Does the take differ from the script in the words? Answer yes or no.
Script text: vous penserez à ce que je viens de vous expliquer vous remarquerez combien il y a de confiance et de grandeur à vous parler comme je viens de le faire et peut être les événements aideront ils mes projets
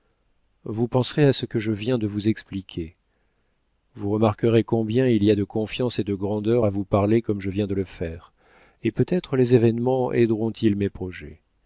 no